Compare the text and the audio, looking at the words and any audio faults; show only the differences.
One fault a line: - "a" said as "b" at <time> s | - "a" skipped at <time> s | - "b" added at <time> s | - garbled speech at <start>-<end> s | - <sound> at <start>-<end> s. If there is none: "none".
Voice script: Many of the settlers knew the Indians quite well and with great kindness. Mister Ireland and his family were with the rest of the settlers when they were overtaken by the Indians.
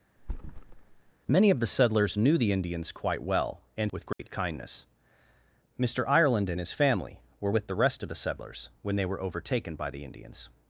- thud at 0.2-1.1 s
- dropout at 4.1-4.2 s